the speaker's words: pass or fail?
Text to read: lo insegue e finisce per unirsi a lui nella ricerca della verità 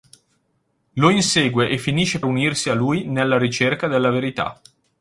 fail